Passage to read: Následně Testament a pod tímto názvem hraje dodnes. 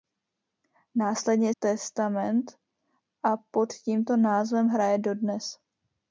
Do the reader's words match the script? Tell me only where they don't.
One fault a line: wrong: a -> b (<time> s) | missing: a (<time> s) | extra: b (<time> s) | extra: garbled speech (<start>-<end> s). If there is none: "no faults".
no faults